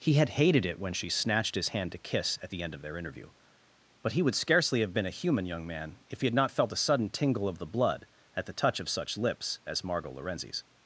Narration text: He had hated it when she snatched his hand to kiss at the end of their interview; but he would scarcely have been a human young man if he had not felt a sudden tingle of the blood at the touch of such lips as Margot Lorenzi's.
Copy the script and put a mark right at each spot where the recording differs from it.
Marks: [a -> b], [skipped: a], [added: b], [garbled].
He had hated it when she snatched his hand to kiss at the end of their interview; but he would scarcely have been a human young man if he had not felt a sudden tingle of the blood at the touch of such lips as Margot Lorenzi's.